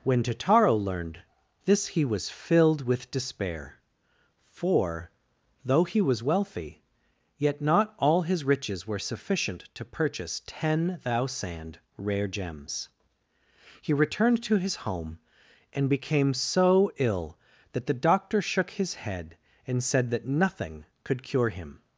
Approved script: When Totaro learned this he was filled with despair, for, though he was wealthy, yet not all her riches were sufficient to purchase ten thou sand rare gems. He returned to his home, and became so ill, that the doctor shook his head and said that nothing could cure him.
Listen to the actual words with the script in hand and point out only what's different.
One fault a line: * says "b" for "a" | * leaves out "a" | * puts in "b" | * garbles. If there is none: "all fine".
* says "his" for "her"